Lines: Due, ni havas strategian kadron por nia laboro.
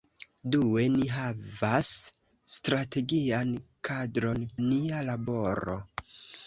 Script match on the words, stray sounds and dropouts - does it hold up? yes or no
no